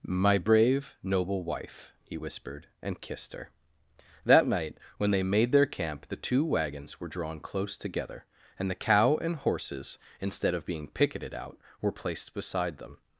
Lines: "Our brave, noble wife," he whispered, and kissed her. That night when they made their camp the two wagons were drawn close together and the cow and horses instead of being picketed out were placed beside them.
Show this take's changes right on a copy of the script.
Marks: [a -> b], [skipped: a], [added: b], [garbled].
["Our -> My] brave, noble wife," he whispered, and kissed her. That night when they made their camp the two wagons were drawn close together and the cow and horses instead of being picketed out were placed beside them.